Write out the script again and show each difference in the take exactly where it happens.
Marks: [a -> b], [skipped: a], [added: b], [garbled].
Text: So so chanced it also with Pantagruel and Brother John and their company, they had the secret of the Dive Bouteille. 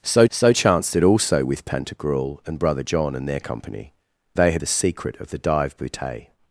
So so chanced it also with Pantagruel and Brother John and their company, they had the secret of the Dive Bouteille.